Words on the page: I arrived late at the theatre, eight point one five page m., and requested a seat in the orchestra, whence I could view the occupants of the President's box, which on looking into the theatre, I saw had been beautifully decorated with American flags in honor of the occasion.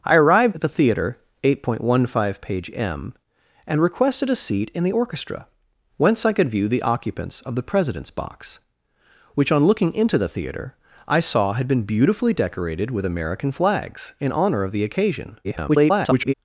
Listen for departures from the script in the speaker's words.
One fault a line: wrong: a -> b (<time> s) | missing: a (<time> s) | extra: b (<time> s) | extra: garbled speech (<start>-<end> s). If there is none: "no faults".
missing: late (0.6 s)
extra: garbled speech (15.4-16.3 s)